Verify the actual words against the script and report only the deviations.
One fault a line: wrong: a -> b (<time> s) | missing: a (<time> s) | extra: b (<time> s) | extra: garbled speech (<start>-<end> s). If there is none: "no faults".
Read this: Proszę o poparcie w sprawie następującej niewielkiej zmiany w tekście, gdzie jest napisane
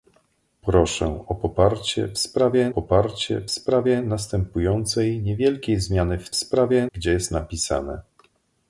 extra: poparcie w sprawie (2.7 s)
wrong: tekście -> sprawie (6.4 s)